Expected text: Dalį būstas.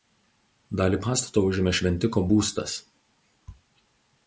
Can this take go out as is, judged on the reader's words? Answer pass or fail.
fail